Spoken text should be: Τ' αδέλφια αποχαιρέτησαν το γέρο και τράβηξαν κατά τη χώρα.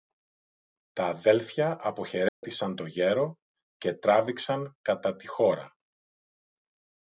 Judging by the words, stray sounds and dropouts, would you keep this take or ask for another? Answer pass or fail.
fail